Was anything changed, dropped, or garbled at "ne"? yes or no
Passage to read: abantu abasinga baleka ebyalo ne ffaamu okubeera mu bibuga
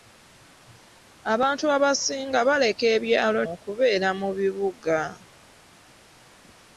yes